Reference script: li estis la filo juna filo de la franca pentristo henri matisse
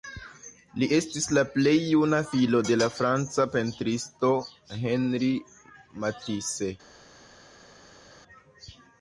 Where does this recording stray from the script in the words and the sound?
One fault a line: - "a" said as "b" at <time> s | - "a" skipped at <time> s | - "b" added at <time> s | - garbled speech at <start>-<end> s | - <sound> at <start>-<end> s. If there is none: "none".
- "filo" said as "plej" at 1.6 s